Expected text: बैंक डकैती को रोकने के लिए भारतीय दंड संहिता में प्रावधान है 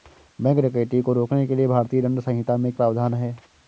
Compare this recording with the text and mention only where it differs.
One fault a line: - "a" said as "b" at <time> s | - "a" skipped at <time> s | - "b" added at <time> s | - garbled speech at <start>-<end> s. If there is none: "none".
none